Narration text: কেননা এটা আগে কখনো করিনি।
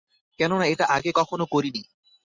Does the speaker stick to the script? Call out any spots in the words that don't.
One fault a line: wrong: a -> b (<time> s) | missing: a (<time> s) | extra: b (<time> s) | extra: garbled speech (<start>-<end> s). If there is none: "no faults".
no faults